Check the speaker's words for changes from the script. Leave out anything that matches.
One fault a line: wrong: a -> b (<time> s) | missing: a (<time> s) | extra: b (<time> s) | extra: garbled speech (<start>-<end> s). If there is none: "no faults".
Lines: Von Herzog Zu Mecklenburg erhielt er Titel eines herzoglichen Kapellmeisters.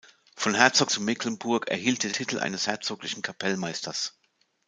no faults